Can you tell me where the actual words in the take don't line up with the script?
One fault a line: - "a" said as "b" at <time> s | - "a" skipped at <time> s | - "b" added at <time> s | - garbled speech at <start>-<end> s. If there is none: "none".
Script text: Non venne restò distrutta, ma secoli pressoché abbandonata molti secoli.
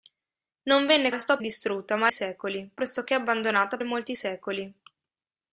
none